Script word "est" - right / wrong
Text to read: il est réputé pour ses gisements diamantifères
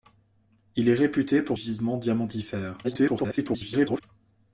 right